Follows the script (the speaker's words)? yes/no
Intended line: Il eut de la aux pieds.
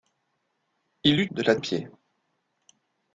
yes